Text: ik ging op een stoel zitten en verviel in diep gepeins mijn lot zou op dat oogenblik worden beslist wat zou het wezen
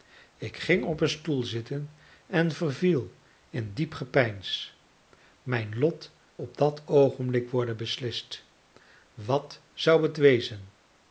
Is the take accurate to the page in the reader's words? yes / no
no